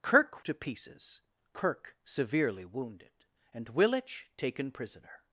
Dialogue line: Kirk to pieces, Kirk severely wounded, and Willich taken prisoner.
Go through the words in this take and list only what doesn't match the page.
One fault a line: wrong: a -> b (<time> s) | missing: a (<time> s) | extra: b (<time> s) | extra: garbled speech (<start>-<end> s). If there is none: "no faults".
no faults